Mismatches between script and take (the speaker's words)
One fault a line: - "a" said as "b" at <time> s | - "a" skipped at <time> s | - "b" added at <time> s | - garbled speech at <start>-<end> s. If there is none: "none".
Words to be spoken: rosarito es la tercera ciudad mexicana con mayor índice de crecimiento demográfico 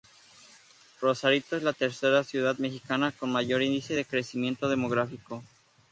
none